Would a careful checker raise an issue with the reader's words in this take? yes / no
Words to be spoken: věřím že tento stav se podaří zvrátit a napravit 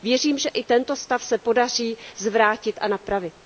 yes